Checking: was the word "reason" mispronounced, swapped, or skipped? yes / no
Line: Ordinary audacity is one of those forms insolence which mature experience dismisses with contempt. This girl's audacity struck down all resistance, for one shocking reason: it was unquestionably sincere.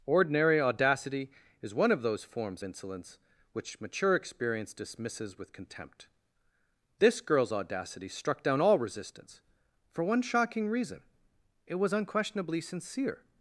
no